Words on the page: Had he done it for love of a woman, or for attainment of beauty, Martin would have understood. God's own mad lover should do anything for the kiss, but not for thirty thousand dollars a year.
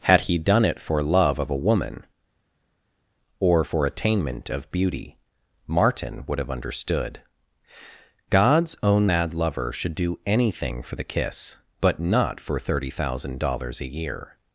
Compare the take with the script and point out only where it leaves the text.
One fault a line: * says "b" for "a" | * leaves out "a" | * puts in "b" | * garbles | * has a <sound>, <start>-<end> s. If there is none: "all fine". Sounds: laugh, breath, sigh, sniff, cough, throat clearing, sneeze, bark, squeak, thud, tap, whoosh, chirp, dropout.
all fine